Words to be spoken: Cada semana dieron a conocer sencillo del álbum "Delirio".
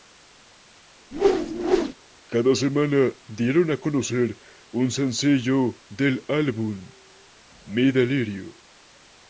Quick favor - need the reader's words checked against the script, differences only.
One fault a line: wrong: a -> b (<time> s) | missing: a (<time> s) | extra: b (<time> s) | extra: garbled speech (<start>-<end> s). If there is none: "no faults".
extra: un (4.7 s)
extra: Mi (7.6 s)